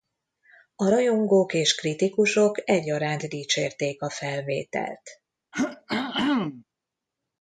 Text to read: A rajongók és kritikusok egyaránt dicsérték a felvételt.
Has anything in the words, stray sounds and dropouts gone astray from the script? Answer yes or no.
yes